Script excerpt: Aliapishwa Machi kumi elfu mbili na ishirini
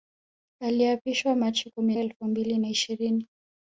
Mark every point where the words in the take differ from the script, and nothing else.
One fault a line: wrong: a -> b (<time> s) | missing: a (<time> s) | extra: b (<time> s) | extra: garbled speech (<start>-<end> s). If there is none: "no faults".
no faults